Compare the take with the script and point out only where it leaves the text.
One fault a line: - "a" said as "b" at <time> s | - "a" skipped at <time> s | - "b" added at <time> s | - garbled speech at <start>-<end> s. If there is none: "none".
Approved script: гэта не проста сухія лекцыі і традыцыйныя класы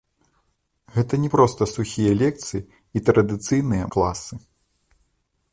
none